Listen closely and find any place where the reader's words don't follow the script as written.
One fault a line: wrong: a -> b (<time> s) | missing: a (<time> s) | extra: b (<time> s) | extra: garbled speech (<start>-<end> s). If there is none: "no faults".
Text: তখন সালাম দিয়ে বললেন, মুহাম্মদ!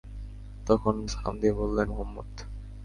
no faults